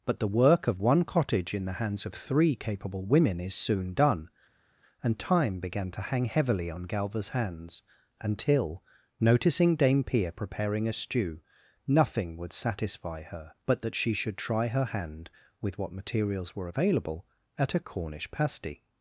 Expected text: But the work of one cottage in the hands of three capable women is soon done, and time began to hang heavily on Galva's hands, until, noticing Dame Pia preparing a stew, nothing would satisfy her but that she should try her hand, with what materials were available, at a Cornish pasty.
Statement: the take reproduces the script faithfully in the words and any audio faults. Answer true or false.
true